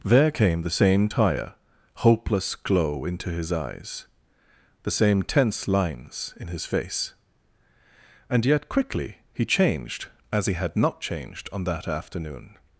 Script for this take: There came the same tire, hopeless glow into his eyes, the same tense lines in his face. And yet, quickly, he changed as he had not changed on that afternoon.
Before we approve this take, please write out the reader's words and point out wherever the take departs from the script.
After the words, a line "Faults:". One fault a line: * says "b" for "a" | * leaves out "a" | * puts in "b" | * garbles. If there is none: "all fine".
There came the same tire, hopeless glow into his eyes, the same tense lines in his face. And yet, quickly, he changed as he had not changed on that afternoon.
Faults:
all fine